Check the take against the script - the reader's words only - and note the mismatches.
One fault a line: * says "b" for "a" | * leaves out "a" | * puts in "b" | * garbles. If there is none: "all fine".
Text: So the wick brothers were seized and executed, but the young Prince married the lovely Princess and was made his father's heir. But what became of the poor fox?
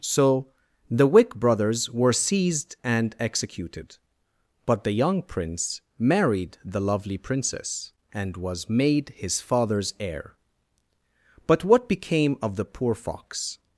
all fine